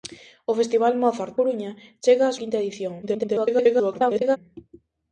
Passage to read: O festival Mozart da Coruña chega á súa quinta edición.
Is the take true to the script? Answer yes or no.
no